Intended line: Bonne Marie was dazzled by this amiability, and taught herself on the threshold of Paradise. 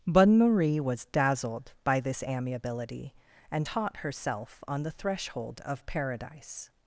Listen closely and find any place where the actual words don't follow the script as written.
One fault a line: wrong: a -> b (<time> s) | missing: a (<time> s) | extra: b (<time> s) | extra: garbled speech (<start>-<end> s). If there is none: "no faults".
no faults